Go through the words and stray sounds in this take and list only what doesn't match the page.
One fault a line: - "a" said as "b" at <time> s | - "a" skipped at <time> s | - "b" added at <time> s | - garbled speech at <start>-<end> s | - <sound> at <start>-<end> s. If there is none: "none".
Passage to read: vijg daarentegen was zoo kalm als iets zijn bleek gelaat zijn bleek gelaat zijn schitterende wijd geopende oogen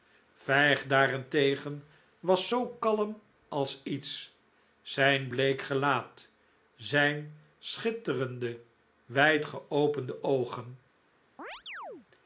- "bleek gelaat zijn" skipped at 7.4 s
- chirp at 11.4-12.1 s